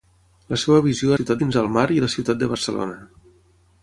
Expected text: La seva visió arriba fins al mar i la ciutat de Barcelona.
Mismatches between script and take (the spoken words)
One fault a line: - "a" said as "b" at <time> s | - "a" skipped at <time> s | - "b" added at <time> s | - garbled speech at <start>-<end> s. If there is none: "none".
- "arriba" said as "ciutat" at 1.2 s